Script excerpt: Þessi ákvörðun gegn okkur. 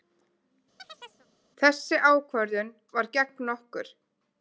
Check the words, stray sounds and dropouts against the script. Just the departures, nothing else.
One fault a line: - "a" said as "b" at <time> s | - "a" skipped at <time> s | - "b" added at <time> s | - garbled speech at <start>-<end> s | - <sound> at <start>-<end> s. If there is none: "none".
- chirp at 0.8-1.3 s
- "var" added at 3.0 s